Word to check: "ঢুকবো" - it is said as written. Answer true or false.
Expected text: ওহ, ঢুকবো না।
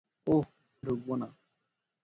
true